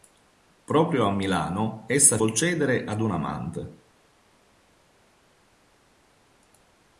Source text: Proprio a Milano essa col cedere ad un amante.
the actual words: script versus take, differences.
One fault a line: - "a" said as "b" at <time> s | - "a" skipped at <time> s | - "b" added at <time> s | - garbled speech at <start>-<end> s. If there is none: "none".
none